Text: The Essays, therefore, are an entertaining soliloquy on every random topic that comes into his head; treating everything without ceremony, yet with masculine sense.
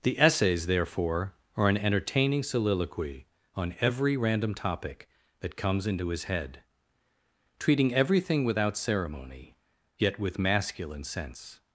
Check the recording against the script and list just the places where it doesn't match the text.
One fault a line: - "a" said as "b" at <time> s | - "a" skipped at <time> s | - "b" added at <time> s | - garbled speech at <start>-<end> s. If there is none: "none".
none